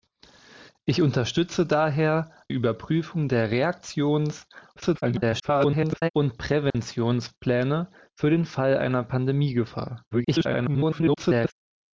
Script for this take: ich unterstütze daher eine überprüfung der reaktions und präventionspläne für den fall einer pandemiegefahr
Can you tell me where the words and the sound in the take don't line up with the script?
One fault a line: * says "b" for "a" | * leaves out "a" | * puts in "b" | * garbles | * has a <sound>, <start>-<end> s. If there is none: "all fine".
* leaves out "eine"
* garbles
* has a dropout, 6.7-6.7 s
* garbles